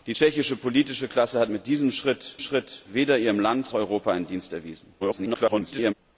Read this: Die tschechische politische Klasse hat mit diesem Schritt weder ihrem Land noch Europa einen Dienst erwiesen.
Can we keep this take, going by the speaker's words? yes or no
no